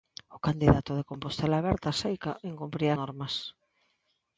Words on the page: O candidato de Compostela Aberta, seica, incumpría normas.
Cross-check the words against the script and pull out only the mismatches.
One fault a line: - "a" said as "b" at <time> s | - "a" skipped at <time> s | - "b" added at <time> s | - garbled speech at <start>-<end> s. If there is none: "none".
none